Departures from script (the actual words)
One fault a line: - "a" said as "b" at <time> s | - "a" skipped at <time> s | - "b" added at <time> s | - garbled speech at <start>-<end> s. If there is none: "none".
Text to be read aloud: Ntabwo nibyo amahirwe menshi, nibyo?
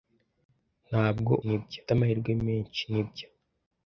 none